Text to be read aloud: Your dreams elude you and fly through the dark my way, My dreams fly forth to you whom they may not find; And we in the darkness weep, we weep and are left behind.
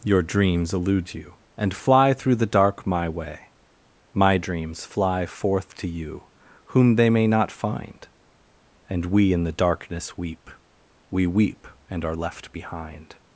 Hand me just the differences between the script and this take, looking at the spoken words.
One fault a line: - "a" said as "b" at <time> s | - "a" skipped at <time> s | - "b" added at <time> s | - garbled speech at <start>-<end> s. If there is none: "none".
none